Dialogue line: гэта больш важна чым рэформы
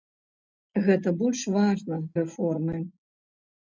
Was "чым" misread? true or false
true